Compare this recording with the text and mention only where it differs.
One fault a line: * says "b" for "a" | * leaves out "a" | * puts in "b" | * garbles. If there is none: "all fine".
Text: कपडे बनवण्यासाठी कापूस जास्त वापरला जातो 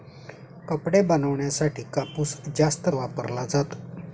all fine